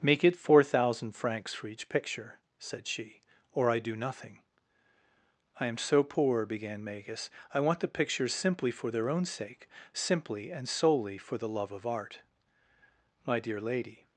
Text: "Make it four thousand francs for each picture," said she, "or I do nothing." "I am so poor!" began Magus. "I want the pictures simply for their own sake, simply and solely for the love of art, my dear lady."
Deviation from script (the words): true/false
false